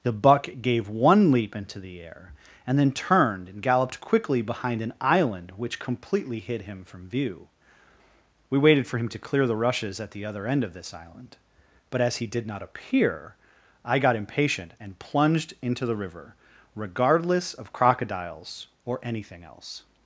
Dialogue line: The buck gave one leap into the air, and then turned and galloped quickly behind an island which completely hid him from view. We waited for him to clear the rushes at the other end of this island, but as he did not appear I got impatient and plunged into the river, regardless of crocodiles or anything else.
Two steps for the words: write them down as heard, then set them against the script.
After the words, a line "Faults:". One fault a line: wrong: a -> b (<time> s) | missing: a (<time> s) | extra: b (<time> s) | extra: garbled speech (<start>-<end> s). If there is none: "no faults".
The buck gave one leap into the air, and then turned and galloped quickly behind an island which completely hid him from view. We waited for him to clear the rushes at the other end of this island, but as he did not appear I got impatient and plunged into the river, regardless of crocodiles or anything else.
Faults:
no faults